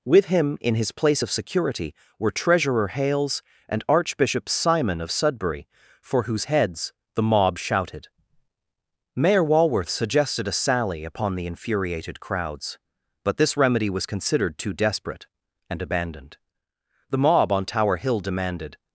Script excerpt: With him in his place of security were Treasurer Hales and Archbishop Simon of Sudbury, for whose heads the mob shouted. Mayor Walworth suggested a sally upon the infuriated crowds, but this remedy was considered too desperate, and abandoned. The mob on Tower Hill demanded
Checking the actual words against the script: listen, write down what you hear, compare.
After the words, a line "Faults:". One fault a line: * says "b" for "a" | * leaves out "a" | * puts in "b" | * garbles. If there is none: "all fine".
With him in his place of security were Treasurer Hales and Archbishop Simon of Sudbury, for whose heads the mob shouted. Mayor Walworth suggested a sally upon the infuriated crowds, but this remedy was considered too desperate, and abandoned. The mob on Tower Hill demanded
Faults:
all fine